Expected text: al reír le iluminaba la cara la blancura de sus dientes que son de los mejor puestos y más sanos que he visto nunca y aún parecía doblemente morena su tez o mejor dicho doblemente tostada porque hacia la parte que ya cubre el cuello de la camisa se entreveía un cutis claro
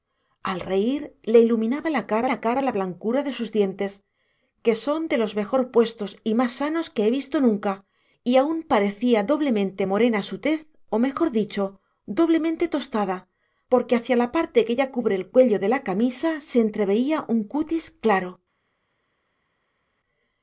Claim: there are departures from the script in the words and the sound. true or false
true